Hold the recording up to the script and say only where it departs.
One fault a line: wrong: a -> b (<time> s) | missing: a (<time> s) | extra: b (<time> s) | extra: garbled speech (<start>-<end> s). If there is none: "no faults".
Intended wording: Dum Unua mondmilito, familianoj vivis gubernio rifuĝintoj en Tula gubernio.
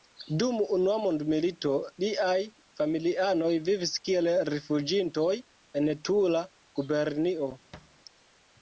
extra: liaj (2.0 s)
wrong: gubernio -> kiel (4.1 s)